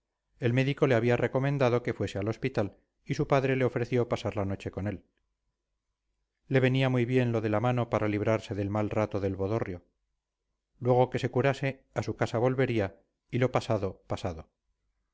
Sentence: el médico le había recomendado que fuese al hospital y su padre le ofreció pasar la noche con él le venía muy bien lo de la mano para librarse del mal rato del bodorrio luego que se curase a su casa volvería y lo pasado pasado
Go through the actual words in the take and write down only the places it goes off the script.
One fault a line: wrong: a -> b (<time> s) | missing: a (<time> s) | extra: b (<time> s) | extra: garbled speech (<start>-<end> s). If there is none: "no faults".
no faults